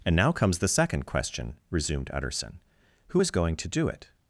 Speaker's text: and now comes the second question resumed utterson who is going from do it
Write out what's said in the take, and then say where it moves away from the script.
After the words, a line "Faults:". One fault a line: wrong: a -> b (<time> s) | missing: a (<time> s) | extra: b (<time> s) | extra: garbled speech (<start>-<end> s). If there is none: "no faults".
and now comes the second question resumed utterson who is going to do it
Faults:
wrong: from -> to (3.6 s)